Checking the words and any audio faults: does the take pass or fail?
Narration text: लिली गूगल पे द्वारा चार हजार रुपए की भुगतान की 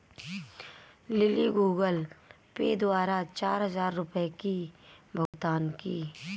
fail